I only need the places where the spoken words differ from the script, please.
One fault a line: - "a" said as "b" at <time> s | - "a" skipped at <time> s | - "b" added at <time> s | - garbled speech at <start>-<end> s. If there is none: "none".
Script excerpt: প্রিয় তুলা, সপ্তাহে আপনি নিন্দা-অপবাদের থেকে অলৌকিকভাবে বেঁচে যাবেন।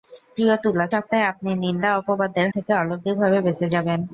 none